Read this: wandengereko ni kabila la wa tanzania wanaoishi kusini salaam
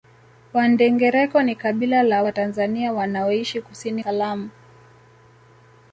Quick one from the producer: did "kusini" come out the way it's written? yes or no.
yes